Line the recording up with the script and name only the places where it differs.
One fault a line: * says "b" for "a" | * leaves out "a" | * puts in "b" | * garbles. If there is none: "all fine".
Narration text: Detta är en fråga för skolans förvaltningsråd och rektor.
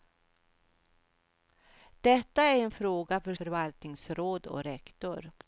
* leaves out "skolans"